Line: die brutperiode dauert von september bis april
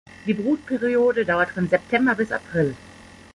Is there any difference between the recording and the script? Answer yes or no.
no